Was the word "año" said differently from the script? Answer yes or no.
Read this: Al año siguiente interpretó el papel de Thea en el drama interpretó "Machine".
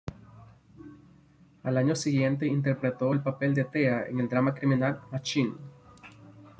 no